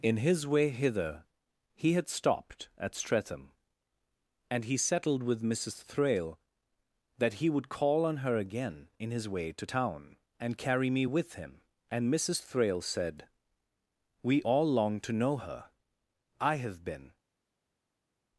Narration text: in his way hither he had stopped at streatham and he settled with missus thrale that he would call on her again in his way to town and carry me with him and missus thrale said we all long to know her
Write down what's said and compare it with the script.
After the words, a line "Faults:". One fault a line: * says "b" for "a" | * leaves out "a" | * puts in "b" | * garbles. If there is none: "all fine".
in his way hither he had stopped at streatham and he settled with missus thrale that he would call on her again in his way to town and carry me with him and missus thrale said we all long to know her i have been
Faults:
* puts in "i have been"